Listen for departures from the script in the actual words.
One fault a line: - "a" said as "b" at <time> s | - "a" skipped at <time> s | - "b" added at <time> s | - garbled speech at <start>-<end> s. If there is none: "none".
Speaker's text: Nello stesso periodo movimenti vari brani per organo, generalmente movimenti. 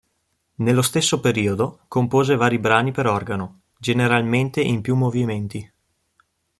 - "movimenti" said as "compose" at 1.9 s
- "in più" added at 4.6 s